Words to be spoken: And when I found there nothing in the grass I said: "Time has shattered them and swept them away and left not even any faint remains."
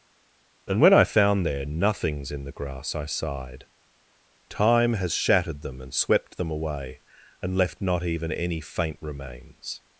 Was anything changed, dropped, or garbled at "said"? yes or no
yes